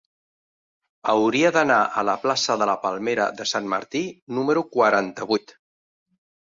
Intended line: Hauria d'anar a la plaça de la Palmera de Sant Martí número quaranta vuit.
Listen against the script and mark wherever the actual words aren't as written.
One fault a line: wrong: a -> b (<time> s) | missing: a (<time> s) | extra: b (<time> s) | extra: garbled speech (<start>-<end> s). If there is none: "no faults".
no faults